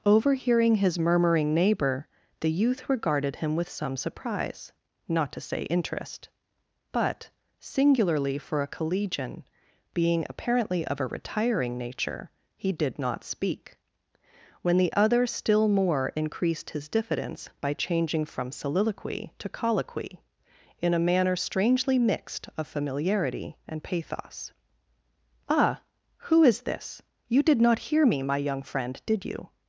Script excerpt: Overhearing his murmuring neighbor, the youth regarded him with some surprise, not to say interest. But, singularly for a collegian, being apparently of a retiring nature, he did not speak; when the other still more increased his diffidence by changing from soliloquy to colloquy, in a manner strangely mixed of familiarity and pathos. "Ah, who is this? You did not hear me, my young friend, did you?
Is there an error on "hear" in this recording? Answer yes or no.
no